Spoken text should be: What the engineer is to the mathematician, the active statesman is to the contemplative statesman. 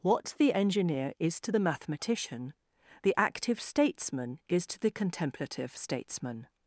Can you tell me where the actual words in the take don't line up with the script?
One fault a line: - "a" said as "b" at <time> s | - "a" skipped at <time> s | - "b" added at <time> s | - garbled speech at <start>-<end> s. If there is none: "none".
none